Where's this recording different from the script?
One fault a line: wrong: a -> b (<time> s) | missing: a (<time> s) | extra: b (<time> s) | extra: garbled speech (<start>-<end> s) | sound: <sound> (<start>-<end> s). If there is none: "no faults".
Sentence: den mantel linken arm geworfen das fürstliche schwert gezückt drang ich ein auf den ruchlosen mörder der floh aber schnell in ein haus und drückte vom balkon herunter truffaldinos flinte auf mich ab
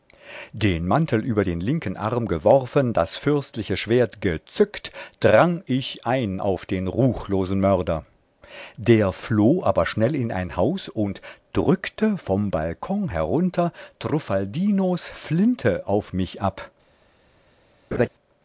extra: über den (1.2 s)
sound: laugh (17.9-18.1 s)